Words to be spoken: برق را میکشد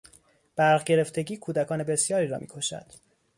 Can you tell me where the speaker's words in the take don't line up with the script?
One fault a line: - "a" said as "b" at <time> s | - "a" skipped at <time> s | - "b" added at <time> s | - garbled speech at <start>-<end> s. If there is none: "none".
- "گرفتگی کودکان بسیاری" added at 0.8 s